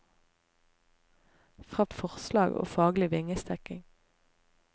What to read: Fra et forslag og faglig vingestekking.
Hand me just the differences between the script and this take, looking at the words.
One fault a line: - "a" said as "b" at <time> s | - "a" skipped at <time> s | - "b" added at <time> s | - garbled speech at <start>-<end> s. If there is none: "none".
none